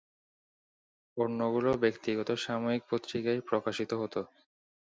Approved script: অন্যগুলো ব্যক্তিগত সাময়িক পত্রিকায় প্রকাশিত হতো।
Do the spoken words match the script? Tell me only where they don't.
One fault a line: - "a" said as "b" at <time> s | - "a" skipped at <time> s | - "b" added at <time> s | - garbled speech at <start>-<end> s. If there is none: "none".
none